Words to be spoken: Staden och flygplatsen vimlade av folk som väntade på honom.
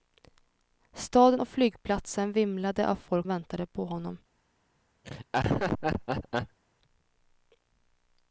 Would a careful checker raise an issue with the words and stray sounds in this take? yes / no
yes